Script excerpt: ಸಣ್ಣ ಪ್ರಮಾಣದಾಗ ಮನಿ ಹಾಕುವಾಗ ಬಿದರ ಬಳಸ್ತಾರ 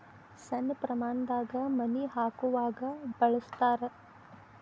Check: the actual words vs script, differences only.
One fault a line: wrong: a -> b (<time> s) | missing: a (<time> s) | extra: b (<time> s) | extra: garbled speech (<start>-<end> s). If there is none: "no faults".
missing: ಬಿದರ (2.8 s)